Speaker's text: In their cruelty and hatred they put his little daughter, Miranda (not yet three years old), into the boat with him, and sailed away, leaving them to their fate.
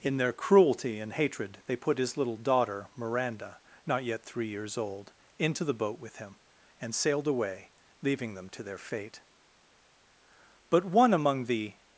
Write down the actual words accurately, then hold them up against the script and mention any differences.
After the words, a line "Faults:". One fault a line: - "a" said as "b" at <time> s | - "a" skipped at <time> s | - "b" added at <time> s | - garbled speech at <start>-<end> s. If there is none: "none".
In their cruelty and hatred they put his little daughter, Miranda (not yet three years old), into the boat with him, and sailed away, leaving them to their fate. But one among the
Faults:
- "But one among the" added at 10.7 s